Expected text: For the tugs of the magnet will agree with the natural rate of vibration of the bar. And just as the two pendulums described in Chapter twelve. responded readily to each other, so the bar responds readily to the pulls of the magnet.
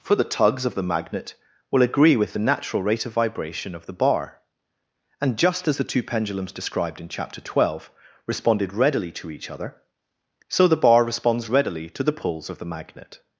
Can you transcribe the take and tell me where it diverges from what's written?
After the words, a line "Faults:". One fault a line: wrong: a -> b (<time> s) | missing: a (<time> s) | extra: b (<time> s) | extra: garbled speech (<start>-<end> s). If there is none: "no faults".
For the tugs of the magnet will agree with the natural rate of vibration of the bar. And just as the two pendulums described in Chapter twelve. responded readily to each other, so the bar responds readily to the pulls of the magnet.
Faults:
no faults